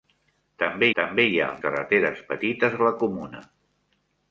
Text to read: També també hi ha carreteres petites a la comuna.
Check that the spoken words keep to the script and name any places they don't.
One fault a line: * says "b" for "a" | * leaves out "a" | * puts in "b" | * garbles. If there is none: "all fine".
all fine